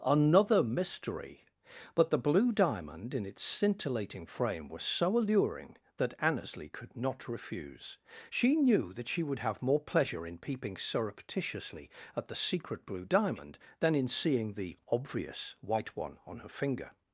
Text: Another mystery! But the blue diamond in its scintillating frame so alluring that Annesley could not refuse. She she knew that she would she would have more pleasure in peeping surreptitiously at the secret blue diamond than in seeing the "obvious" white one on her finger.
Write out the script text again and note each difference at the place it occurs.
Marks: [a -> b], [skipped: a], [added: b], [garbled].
Another mystery! But the blue diamond in its scintillating frame [added: was] so alluring that Annesley could not refuse. She [skipped: she] knew that she would [skipped: she would] have more pleasure in peeping surreptitiously at the secret blue diamond than in seeing the "obvious" white one on her finger.